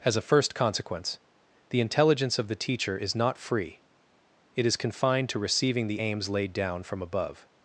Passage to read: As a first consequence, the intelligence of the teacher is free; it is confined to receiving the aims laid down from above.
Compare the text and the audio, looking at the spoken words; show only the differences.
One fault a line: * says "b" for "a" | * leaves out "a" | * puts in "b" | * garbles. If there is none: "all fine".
* puts in "not"